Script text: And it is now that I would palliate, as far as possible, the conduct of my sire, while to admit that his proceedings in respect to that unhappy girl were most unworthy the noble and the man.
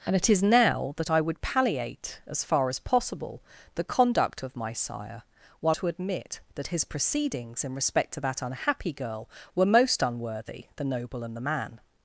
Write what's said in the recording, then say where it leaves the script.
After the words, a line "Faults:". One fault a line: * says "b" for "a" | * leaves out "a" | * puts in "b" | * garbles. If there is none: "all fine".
And it is now that I would palliate, as far as possible, the conduct of my sire, while to admit that his proceedings in respect to that unhappy girl were most unworthy the noble and the man.
Faults:
all fine